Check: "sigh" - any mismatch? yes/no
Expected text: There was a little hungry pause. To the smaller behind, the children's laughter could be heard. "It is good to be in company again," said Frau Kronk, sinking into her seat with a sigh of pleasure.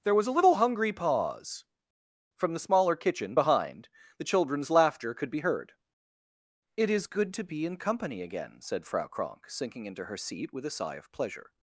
no